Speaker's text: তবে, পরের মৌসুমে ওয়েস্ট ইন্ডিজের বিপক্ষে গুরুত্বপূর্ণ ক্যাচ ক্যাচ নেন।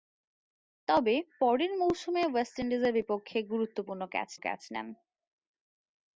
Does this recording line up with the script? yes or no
yes